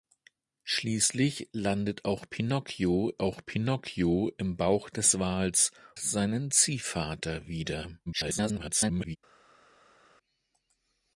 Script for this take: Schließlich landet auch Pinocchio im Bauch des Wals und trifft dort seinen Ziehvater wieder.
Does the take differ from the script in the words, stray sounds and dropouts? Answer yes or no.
yes